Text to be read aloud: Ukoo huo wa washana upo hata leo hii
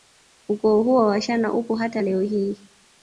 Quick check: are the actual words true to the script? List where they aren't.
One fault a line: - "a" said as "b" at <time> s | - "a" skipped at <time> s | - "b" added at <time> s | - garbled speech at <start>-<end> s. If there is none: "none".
none